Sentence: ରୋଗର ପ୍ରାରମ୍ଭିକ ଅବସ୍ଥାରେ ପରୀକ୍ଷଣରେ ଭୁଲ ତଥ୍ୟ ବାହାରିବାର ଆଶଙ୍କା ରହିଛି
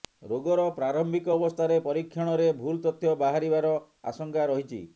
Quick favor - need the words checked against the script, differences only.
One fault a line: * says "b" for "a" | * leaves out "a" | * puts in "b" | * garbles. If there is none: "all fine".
all fine